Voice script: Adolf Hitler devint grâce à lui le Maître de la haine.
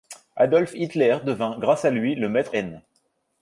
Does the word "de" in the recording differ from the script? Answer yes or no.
yes